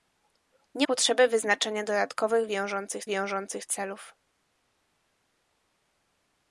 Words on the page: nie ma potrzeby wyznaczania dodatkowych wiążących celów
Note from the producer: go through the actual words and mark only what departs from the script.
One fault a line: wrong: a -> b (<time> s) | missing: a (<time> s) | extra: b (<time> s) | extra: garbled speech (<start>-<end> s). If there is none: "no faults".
missing: ma (0.9 s)
extra: wiążących (3.0 s)